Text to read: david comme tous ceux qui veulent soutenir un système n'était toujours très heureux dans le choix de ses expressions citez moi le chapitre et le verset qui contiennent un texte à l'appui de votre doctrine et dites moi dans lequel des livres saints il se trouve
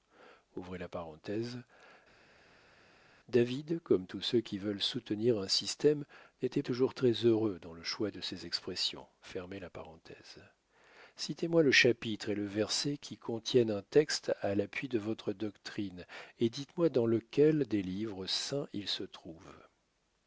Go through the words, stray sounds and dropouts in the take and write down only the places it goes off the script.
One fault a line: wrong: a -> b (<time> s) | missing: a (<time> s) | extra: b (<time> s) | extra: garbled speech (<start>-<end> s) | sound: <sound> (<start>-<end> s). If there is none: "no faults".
no faults